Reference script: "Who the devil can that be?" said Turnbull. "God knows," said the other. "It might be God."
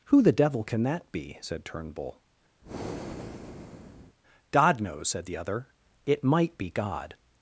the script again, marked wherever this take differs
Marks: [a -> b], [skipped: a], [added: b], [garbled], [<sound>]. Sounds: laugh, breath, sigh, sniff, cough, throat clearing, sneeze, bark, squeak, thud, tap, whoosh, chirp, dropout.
"Who the devil can that be?" said Turnbull. [breath] "God knows," said the other. "It might be God."